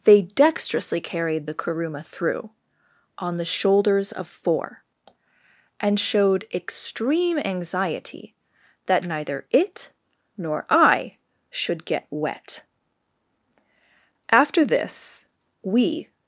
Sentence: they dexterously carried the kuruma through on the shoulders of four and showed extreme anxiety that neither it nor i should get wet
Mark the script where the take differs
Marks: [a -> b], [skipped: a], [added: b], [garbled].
they dexterously carried the kuruma through on the shoulders of four and showed extreme anxiety that neither it nor i should get wet [added: after this we]